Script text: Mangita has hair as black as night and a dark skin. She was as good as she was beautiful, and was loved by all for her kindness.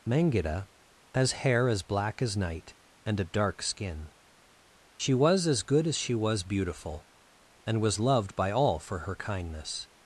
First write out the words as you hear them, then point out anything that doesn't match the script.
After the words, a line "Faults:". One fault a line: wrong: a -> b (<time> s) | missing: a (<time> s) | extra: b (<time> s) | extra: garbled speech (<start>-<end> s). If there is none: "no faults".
Mangita has hair as black as night and a dark skin. She was as good as she was beautiful, and was loved by all for her kindness.
Faults:
no faults